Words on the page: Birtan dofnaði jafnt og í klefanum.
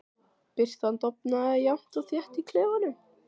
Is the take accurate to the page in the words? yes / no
no